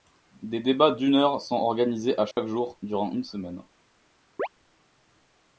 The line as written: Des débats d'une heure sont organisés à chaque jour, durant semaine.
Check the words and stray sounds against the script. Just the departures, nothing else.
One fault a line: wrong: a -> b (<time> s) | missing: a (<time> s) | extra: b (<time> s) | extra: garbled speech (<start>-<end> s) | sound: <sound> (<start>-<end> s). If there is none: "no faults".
sound: dropout (2.3-2.4 s)
extra: une (3.1 s)
sound: chirp (4.4-4.5 s)